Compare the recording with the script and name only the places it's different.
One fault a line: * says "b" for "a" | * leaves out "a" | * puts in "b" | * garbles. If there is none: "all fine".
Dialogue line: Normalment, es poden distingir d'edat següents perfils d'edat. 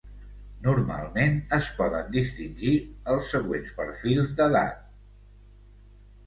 * says "els" for "d'edat"